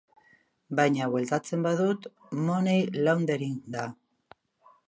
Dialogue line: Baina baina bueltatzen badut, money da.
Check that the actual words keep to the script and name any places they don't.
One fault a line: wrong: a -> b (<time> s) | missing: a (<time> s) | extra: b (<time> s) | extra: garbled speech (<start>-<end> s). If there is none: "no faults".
missing: baina (1.1 s)
extra: laundering (3.1 s)